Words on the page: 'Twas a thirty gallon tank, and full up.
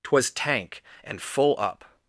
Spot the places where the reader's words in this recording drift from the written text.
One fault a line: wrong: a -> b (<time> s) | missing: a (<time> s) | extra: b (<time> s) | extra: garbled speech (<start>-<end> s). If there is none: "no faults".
missing: a thirty gallon (0.3 s)